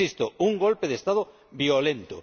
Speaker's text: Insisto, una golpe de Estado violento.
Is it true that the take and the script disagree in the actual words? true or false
true